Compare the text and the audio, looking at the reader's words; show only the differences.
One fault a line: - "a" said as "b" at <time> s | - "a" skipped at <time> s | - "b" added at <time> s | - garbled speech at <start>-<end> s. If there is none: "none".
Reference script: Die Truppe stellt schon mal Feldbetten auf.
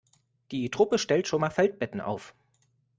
none